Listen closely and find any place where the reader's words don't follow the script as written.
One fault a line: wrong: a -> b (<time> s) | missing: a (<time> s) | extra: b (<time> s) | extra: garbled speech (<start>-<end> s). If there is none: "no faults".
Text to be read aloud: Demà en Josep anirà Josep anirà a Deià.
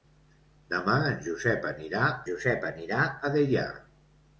no faults